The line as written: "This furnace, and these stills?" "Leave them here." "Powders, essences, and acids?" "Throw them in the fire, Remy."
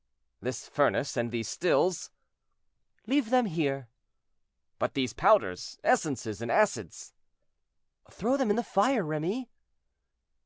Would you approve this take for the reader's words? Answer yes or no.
no